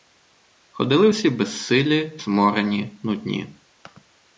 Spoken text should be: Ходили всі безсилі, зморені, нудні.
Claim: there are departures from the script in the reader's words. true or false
false